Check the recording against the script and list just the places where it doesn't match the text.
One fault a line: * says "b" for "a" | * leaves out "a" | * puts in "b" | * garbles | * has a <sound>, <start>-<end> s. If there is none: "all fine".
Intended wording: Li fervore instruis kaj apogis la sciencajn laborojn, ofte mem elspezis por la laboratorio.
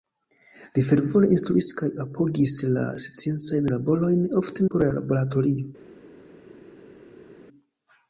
* leaves out "mem elspezis"